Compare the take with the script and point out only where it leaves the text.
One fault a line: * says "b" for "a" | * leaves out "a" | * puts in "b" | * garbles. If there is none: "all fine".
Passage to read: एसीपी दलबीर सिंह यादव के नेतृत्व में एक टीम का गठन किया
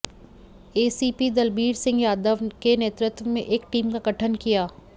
all fine